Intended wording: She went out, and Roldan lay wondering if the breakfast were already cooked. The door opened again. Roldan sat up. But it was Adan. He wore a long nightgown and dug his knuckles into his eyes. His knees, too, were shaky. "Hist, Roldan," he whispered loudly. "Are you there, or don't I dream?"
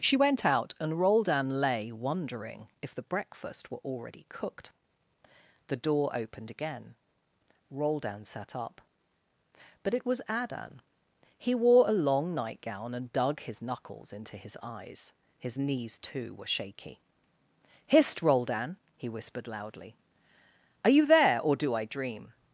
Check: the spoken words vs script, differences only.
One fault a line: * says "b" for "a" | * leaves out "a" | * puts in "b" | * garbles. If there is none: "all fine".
* says "do" for "don't"